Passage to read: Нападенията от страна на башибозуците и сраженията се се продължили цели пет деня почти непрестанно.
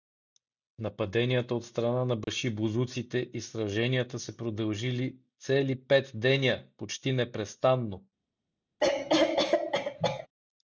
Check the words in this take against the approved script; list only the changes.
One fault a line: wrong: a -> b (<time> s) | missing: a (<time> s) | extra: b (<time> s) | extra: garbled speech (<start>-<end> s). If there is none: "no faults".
missing: се (4.4 s)